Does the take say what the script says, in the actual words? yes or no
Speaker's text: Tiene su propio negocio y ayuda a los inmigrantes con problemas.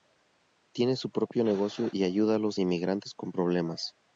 yes